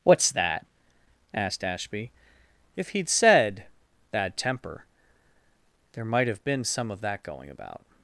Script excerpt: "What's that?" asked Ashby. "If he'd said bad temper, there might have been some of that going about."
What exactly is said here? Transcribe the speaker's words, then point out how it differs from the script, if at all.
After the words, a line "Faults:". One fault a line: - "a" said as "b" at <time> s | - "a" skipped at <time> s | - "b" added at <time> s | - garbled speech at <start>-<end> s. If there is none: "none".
"What's that?" asked Ashby. "If he'd said bad temper, there might have been some of that going about."
Faults:
none